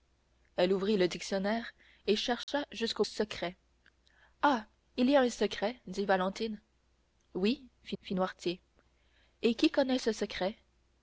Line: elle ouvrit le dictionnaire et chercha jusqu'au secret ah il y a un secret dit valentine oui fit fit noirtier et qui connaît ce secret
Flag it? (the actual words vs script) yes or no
no